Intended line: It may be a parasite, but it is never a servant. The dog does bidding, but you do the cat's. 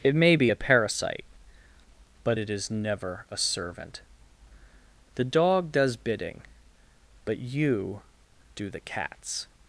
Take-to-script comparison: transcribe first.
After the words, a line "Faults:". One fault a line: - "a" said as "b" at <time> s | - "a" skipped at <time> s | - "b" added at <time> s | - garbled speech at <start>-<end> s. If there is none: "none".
It may be a parasite, but it is never a servant. The dog does bidding, but you do the cat's.
Faults:
none